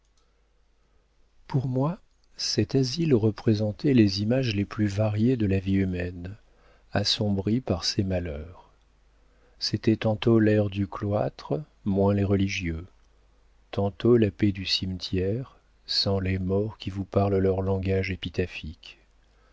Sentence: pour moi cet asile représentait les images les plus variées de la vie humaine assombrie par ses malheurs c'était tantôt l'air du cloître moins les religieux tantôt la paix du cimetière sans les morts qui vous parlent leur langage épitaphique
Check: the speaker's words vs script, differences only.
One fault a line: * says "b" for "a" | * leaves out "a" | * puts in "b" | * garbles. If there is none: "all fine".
all fine